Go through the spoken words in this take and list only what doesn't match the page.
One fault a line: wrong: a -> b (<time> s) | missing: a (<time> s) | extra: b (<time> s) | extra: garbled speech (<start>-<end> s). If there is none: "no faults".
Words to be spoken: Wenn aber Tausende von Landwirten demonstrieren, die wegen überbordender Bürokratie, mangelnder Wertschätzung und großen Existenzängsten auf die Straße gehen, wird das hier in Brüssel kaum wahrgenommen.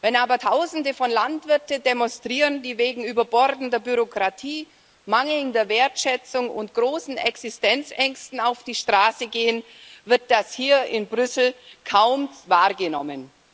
no faults